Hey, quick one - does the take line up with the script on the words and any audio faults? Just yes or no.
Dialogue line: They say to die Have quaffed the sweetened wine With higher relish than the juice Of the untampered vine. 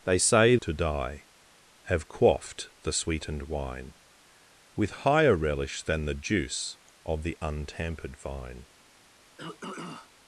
no